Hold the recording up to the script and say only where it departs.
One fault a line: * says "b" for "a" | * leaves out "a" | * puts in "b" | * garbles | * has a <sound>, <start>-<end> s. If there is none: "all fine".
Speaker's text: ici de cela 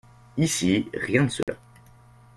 * puts in "rien"
* has a dropout, 1.4-1.5 s